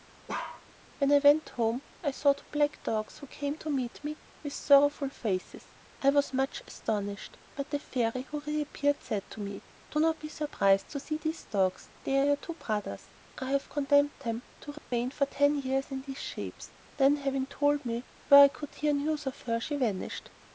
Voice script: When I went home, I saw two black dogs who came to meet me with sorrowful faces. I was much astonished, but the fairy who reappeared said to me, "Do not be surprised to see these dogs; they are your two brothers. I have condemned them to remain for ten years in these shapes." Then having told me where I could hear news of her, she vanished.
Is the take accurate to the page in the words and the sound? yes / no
no